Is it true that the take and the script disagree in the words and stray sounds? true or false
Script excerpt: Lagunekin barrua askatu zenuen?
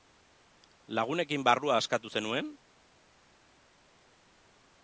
false